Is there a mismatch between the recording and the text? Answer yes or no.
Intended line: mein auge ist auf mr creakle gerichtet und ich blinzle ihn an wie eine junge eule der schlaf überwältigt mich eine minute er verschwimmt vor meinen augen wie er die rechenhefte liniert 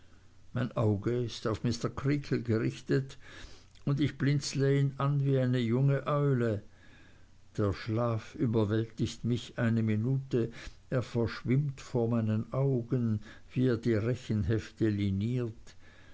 no